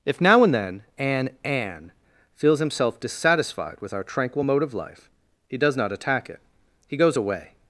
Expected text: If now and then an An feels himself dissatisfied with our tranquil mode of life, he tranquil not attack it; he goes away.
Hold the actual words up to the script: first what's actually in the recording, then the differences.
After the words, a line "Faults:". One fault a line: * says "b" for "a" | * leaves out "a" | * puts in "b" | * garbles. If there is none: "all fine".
If now and then an An feels himself dissatisfied with our tranquil mode of life, he does not attack it; he goes away.
Faults:
* says "does" for "tranquil"